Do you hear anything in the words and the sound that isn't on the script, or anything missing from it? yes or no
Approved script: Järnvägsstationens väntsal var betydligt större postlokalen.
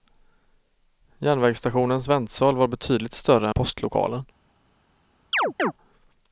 yes